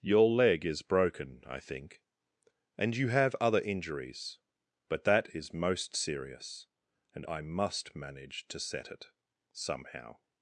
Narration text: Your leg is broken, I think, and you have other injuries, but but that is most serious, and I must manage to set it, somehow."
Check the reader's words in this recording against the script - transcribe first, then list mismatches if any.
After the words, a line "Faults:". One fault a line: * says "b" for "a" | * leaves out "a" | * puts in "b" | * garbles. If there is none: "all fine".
Your leg is broken, I think, and you have other injuries, but that is most serious, and I must manage to set it, somehow."
Faults:
* leaves out "but"